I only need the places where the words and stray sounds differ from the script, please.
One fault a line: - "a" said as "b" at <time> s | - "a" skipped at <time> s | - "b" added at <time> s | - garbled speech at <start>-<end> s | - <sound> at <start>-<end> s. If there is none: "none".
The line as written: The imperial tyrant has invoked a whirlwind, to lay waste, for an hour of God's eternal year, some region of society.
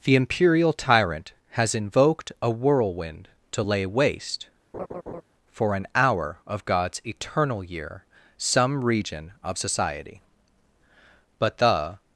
- laugh at 4.7-5.2 s
- "But the" added at 11.4 s